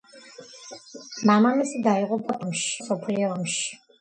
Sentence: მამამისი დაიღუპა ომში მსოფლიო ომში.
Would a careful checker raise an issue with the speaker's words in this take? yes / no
no